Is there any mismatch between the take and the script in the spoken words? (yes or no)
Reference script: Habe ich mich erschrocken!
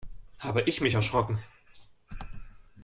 no